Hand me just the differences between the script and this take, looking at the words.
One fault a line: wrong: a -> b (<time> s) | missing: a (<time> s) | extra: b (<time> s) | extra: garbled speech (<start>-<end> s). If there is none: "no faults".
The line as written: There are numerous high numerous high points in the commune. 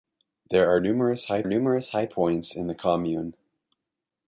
no faults